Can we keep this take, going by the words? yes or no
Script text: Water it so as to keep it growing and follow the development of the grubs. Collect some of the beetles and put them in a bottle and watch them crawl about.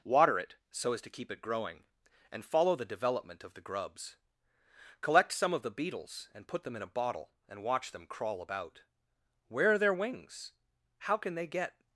no